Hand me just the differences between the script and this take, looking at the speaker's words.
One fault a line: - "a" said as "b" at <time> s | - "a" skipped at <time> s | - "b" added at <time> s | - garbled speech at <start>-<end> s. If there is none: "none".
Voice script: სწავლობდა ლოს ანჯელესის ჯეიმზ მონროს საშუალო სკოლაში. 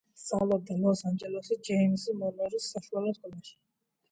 none